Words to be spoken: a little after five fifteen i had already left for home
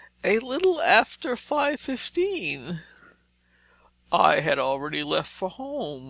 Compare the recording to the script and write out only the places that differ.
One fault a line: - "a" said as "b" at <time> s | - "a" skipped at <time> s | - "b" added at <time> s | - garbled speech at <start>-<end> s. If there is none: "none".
none